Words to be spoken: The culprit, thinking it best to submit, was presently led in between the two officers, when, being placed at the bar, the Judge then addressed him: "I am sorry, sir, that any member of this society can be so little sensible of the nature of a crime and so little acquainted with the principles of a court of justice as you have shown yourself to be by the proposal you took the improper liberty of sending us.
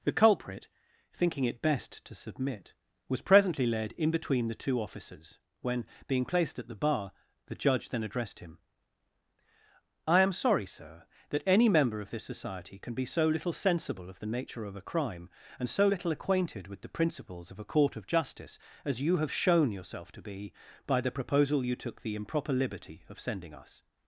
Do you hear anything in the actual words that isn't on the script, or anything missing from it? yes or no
no